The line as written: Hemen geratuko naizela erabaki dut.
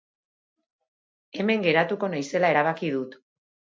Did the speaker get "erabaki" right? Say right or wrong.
right